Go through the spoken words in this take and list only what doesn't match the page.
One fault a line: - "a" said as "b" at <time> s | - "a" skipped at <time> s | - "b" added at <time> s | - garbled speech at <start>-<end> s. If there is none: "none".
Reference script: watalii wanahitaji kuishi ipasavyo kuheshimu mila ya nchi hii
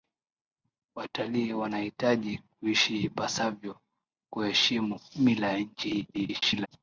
- garbled speech at 6.1-6.7 s